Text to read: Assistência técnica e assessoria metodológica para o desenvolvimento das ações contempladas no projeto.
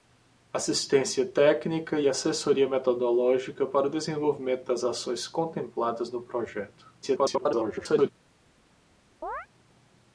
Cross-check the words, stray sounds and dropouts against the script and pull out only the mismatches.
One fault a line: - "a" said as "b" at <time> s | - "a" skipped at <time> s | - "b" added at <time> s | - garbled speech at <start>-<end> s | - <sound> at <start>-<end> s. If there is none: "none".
- garbled speech at 7.0-8.1 s
- chirp at 9.2-9.5 s